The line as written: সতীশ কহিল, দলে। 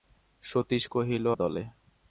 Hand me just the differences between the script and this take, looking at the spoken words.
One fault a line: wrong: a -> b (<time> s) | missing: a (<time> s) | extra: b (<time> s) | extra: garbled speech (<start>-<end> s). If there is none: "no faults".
no faults